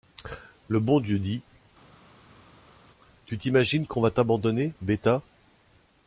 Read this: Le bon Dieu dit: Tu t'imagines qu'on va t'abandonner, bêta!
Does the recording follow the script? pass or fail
pass